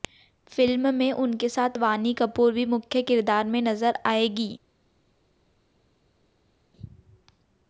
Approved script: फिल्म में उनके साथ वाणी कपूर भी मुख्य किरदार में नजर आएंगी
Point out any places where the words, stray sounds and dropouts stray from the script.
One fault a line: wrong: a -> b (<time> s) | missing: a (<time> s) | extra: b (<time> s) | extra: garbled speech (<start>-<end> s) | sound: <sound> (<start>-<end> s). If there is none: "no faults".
no faults